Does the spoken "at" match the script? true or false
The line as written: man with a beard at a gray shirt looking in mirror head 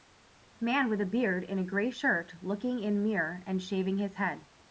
false